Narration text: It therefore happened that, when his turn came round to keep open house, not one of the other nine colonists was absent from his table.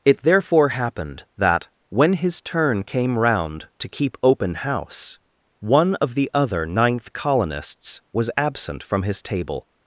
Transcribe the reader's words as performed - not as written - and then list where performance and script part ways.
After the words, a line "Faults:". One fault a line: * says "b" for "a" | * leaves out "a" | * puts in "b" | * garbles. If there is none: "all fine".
It therefore happened that, when his turn came round to keep open house, one of the other ninth colonists was absent from his table.
Faults:
* leaves out "not"
* says "ninth" for "nine"